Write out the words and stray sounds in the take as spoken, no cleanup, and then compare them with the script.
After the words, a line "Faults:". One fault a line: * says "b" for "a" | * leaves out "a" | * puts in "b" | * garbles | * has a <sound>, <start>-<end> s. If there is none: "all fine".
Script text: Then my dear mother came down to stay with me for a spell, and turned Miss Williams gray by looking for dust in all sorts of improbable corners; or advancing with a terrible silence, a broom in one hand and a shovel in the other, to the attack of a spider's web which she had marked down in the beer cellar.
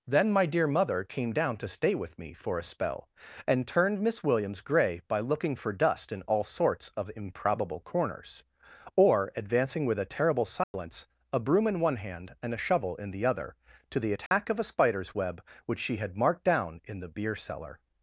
Then my dear mother came down to stay with me for a spell, and turned Miss Williams gray by looking for dust in all sorts of improbable corners; or advancing with a terrible silence, a broom in one hand and a shovel in the other, to the attack of a spider's web which she had marked down in the beer cellar.
Faults:
* has a dropout, 10.6-10.7 s
* has a dropout, 14.3-14.3 s